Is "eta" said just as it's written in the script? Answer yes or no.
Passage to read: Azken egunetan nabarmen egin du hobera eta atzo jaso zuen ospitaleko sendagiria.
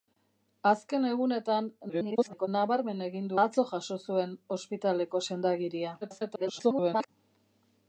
no